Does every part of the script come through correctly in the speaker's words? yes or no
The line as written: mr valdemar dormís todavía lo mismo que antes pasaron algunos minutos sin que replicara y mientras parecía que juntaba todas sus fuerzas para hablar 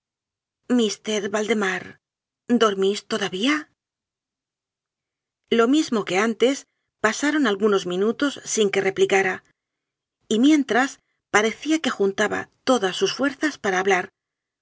yes